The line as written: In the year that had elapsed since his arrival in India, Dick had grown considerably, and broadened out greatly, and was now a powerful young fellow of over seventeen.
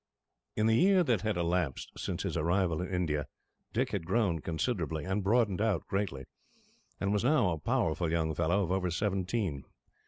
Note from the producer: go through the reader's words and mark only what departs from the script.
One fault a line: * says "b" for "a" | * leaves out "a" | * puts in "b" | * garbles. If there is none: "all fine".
all fine